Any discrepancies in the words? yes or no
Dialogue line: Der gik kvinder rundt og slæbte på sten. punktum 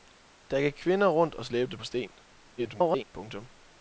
yes